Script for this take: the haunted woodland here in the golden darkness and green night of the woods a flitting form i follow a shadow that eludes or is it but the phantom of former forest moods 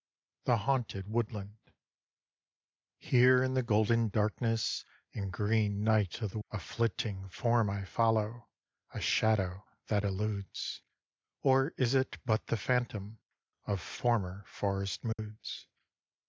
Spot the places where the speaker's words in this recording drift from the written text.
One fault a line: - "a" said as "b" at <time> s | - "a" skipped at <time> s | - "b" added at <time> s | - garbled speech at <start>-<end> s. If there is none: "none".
- "woods" skipped at 6.4 s